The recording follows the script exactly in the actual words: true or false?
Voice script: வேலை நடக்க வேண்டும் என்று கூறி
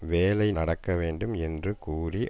true